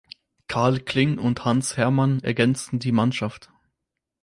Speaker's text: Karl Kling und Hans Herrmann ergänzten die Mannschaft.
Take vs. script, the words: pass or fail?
pass